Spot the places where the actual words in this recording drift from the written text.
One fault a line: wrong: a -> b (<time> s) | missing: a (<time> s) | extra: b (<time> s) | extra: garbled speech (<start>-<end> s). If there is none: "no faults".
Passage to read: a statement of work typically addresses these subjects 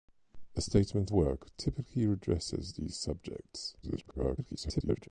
missing: of (1.1 s)
extra: garbled speech (3.8-5.1 s)